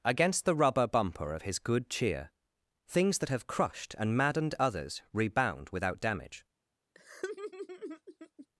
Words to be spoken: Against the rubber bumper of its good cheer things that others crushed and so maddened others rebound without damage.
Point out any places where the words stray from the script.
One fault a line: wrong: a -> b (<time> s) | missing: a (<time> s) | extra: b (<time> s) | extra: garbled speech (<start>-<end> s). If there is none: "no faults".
wrong: its -> his (1.4 s)
wrong: others -> have (3.3 s)
missing: so (4.2 s)